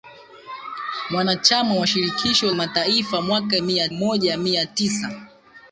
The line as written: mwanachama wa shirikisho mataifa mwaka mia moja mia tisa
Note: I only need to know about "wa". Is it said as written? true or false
true